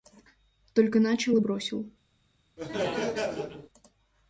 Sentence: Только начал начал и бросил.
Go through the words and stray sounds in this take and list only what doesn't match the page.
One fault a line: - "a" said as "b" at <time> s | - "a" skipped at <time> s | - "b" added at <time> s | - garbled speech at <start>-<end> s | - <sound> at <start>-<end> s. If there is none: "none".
- "начал" skipped at 1.4 s
- laugh at 2.6-3.7 s